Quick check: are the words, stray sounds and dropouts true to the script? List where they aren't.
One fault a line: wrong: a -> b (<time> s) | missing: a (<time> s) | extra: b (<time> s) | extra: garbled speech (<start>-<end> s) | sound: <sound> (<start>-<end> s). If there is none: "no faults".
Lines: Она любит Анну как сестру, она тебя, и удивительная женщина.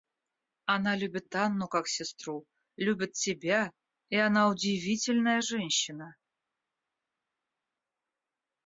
wrong: она -> любит (2.8 s)
extra: она (4.2 s)